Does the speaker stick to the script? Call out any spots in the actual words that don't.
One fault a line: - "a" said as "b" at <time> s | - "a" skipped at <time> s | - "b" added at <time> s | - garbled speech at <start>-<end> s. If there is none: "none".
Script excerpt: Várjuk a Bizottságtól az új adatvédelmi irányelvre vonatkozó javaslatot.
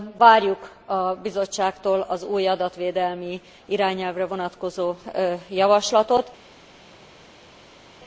none